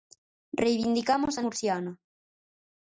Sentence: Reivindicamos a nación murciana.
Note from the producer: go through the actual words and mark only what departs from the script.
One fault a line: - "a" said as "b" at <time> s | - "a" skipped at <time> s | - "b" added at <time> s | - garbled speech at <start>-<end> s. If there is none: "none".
- "nación" skipped at 1.4 s